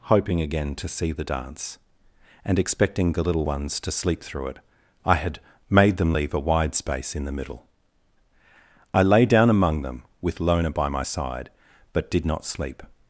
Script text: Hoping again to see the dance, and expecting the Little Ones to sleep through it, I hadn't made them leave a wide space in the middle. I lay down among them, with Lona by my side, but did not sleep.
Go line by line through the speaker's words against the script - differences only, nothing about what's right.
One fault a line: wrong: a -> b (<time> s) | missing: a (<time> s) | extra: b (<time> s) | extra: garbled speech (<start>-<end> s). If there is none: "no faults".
wrong: hadn't -> had (5.2 s)